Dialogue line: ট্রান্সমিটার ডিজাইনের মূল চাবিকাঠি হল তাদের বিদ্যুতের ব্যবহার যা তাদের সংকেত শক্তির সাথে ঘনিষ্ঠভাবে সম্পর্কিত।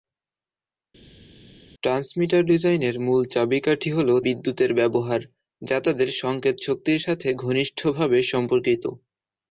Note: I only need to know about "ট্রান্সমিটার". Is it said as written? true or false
true